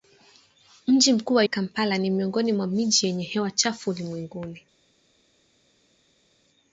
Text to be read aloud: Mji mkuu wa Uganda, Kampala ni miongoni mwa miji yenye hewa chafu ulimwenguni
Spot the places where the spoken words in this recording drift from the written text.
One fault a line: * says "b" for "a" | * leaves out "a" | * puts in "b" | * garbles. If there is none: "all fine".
* leaves out "Uganda"